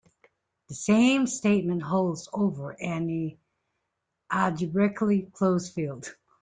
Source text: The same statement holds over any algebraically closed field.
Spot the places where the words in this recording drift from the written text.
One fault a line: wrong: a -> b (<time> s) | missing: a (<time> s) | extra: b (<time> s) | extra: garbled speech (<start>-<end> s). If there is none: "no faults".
no faults